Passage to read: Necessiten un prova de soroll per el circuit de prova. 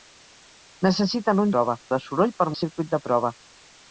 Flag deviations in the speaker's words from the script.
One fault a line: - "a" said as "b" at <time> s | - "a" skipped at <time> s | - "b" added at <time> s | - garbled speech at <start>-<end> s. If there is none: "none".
none